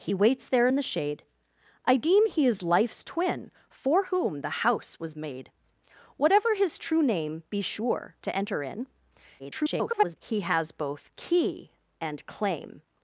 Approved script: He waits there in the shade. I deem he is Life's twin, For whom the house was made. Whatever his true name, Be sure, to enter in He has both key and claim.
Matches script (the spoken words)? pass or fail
fail